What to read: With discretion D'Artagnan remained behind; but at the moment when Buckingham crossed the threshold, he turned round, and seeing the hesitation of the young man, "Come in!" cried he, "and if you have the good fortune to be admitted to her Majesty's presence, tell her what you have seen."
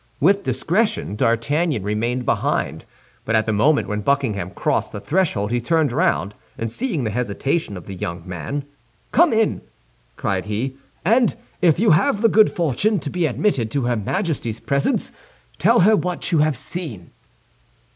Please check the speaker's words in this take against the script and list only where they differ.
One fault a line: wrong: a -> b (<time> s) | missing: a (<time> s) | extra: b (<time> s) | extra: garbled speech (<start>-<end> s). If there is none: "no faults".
no faults